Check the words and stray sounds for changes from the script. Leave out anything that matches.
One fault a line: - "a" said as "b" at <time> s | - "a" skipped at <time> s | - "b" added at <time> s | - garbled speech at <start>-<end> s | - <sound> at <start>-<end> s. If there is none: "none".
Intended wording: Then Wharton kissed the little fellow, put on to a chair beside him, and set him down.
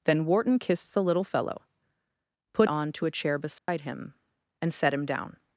- dropout at 3.6-3.7 s